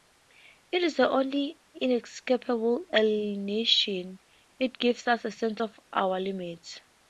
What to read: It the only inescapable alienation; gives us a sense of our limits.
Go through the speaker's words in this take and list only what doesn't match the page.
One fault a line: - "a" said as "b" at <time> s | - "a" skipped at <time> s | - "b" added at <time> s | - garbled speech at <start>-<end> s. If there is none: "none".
- "is" added at 0.8 s
- "it" added at 4.6 s